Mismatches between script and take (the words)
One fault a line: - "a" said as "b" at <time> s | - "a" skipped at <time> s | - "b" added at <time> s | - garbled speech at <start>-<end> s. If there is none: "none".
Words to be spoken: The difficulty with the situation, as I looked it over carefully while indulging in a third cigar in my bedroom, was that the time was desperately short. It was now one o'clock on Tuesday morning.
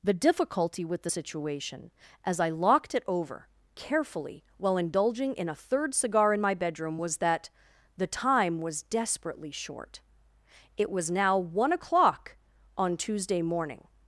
- "looked" said as "locked" at 2.5 s